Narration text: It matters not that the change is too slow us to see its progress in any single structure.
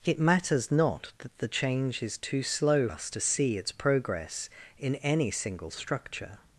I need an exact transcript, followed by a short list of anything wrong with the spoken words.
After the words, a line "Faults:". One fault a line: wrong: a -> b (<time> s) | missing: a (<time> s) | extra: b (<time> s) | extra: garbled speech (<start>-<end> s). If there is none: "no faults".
It matters not that the change is too slow us to see its progress in any single structure.
Faults:
no faults